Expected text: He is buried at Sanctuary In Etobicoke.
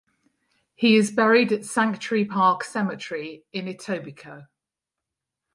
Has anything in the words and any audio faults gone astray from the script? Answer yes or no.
yes